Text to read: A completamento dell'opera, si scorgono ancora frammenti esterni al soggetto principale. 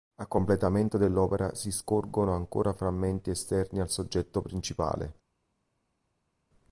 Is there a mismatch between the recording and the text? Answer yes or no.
no